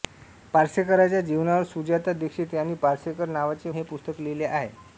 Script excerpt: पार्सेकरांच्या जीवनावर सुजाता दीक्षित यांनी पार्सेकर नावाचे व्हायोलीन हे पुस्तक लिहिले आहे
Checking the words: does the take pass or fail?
fail